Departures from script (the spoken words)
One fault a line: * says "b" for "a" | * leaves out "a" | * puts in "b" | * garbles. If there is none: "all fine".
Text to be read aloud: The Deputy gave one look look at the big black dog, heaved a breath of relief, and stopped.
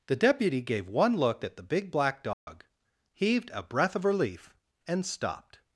* leaves out "look"